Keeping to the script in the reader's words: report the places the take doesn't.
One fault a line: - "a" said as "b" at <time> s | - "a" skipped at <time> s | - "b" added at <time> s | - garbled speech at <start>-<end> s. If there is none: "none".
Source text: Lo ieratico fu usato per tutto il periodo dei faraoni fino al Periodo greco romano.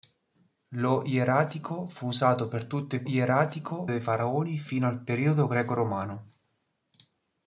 - "periodo" said as "ieratico" at 3.1 s